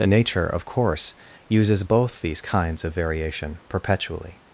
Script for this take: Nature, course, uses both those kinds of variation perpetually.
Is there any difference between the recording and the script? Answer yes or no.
yes